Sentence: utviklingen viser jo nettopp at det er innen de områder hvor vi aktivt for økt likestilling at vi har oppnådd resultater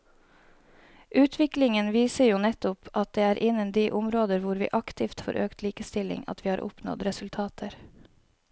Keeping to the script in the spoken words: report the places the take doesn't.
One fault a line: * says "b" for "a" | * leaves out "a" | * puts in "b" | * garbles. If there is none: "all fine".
all fine